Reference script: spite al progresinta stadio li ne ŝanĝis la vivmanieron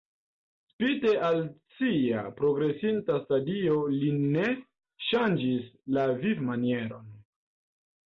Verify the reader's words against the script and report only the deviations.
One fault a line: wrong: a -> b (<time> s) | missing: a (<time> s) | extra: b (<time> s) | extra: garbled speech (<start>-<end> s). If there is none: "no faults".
extra: sia (1.8 s)